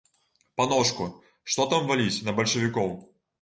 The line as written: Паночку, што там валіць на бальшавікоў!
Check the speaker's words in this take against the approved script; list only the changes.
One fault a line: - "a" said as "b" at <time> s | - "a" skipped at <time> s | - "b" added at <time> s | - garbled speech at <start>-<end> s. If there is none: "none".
none